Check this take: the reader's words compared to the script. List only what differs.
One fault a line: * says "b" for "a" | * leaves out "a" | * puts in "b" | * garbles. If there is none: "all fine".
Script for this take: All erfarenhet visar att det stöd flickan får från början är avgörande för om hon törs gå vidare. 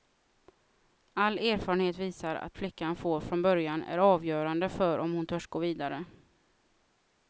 * leaves out "det stöd"